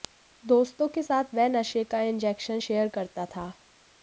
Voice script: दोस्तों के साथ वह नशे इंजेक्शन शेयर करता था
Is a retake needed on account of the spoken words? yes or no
yes